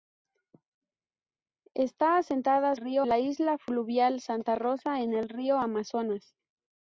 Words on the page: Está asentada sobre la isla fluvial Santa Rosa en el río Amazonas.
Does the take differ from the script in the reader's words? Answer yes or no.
yes